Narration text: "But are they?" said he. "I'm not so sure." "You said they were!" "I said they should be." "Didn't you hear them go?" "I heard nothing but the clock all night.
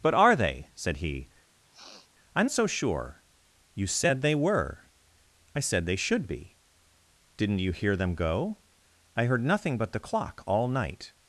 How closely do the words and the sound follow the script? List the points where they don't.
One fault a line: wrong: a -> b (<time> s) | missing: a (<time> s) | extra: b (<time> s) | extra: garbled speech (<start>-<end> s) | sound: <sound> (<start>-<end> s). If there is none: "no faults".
sound: sniff (1.6-2.1 s)
missing: not (2.5 s)